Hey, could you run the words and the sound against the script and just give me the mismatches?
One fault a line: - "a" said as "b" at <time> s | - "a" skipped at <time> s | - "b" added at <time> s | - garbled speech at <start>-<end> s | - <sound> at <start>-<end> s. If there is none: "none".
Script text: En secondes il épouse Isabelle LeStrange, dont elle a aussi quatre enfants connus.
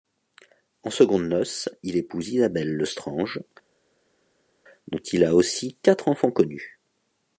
- "noces" added at 1.3 s
- "elle" said as "il" at 5.1 s